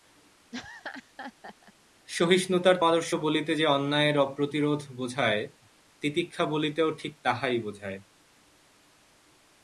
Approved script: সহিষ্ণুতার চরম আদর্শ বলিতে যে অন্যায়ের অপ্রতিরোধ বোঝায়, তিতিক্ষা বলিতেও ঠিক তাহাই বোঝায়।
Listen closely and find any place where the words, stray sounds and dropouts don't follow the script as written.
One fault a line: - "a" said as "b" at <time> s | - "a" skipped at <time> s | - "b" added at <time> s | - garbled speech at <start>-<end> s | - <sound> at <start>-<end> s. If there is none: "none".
- laugh at 0.5-1.7 s
- "চরম" skipped at 2.8 s